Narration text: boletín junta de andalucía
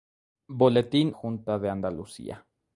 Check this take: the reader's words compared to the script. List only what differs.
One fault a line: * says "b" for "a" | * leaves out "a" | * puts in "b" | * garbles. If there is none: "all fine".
all fine